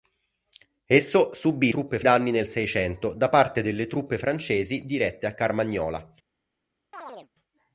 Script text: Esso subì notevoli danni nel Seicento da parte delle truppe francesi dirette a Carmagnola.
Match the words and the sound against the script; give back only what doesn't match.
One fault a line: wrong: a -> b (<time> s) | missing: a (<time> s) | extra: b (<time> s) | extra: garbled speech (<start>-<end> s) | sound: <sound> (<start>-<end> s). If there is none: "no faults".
wrong: notevoli -> truppe (1.7 s)
sound: chirp (6.9-7.3 s)